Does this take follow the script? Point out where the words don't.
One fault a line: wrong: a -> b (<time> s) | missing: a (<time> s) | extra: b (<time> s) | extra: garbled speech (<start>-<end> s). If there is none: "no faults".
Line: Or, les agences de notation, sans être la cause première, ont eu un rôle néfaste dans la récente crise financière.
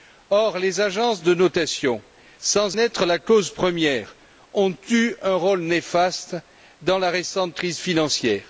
no faults